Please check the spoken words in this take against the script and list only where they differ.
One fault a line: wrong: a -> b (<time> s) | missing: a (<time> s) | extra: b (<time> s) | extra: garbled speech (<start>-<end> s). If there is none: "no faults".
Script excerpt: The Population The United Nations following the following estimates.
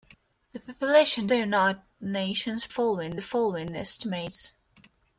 no faults